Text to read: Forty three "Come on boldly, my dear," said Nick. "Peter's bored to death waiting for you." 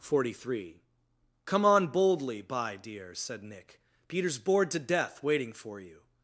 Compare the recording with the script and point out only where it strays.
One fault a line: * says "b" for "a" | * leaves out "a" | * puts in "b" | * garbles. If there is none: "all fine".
* says "by" for "my"